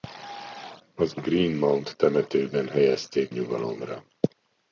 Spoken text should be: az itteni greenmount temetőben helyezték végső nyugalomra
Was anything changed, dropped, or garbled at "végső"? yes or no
yes